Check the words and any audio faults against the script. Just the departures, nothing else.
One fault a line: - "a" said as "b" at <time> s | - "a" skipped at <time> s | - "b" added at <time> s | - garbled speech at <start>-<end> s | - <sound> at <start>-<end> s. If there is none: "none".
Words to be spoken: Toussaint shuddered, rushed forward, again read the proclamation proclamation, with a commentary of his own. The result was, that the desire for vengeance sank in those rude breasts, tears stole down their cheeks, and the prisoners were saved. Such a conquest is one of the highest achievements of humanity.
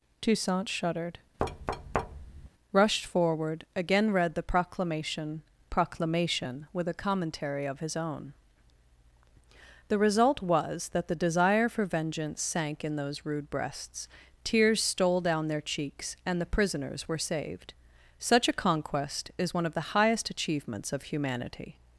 - thud at 1.4-2.5 s